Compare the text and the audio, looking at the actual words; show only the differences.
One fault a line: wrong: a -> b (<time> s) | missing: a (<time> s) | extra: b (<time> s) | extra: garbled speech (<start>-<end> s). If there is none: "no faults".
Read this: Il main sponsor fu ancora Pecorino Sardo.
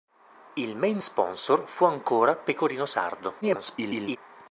extra: garbled speech (3.4-4.2 s)